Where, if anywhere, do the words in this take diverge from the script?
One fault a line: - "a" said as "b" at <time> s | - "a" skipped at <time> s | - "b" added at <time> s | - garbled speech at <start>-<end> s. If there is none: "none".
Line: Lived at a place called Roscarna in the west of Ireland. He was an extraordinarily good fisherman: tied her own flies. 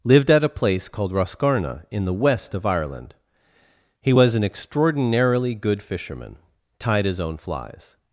- "her" said as "his" at 7.1 s